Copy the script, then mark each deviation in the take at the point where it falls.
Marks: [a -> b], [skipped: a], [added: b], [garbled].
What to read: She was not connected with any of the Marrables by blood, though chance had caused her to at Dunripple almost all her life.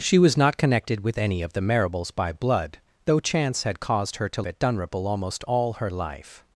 She was not connected with any of the Marrables by blood, though chance had caused her to at Dunripple almost all her life.